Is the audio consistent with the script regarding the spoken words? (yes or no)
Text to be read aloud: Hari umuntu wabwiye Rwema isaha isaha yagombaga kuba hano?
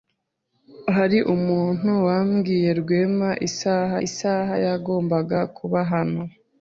yes